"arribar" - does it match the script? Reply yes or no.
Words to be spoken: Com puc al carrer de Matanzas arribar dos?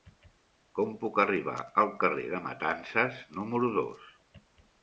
no